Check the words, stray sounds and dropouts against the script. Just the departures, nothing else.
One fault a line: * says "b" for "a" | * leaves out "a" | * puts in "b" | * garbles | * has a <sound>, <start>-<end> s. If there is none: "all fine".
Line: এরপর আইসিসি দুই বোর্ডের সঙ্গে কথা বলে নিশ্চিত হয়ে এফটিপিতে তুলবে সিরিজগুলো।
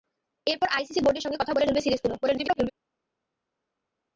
* leaves out "দুই"
* leaves out "নিশ্চিত হয়ে এফটিপিতে"
* garbles